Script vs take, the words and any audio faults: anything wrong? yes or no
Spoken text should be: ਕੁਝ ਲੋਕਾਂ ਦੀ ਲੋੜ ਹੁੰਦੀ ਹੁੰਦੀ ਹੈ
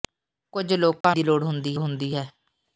yes